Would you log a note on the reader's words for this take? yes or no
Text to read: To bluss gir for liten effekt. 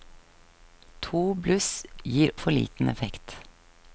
no